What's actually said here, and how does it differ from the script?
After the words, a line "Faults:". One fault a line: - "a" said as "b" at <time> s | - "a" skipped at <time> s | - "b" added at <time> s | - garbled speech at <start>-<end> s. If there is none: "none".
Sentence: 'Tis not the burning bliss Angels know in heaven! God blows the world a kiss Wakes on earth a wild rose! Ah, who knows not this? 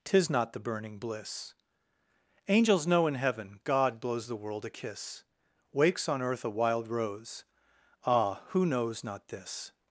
'Tis not the burning bliss Angels know in heaven! God blows the world a kiss Wakes on earth a wild rose! Ah, who knows not this?
Faults:
none